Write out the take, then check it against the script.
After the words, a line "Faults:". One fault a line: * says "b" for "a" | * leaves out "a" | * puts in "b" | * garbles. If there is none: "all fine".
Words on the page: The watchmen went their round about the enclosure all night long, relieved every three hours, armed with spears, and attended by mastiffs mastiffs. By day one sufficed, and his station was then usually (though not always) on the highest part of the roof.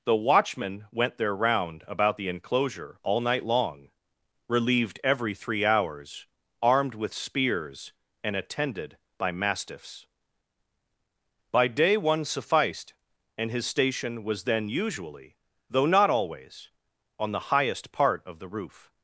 The watchmen went their round about the enclosure all night long, relieved every three hours, armed with spears, and attended by mastiffs. By day one sufficed, and his station was then usually (though not always) on the highest part of the roof.
Faults:
* leaves out "mastiffs"